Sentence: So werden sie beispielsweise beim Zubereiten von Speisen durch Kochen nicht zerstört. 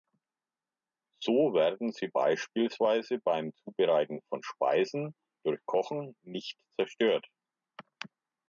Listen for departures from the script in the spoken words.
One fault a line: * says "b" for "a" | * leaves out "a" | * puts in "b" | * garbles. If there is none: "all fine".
all fine